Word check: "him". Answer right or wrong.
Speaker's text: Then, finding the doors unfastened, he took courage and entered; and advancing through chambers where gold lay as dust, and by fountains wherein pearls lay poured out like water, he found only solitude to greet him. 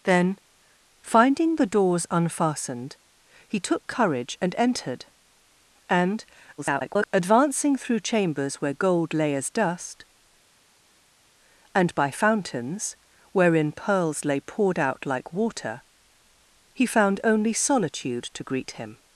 right